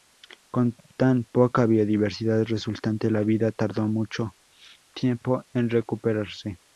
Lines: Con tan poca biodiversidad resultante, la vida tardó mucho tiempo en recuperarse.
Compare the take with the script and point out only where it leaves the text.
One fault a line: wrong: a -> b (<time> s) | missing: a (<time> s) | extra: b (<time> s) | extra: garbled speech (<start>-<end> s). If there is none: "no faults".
no faults